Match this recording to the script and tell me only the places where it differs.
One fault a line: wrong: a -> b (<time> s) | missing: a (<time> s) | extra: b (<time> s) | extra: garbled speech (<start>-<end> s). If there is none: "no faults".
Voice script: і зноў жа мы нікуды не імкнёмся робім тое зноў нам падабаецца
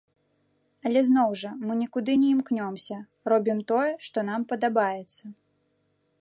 wrong: і -> але (0.9 s)
wrong: зноў -> што (4.1 s)